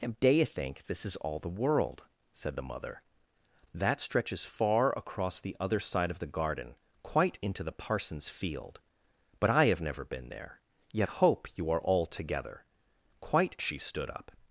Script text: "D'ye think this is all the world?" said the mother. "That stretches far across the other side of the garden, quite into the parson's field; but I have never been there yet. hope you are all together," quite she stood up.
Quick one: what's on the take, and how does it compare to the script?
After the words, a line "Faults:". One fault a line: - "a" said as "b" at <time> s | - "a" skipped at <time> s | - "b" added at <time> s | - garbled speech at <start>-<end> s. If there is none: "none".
"D'ye think this is all the world?" said the mother. "That stretches far across the other side of the garden, quite into the parson's field; but I have never been there yet. hope you are all together," quite she stood up.
Faults:
none